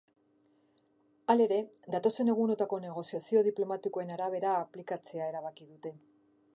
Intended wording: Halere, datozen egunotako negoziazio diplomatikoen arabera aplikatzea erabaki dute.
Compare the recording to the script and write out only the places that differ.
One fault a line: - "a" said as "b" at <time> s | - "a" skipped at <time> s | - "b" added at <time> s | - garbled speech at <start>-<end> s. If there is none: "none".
none